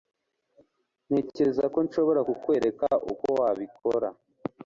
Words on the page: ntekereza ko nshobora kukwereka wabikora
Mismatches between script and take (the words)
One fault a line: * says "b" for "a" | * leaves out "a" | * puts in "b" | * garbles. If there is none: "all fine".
* puts in "uko"